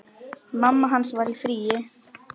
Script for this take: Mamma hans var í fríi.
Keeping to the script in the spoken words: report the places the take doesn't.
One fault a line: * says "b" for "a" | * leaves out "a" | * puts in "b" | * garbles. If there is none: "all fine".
all fine